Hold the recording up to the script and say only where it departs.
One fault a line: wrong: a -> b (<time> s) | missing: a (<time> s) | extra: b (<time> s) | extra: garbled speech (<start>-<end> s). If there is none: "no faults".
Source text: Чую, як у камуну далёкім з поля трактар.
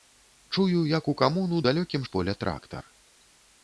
no faults